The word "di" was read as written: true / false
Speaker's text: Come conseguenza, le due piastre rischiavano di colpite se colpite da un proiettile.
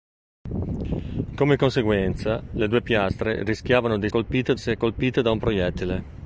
true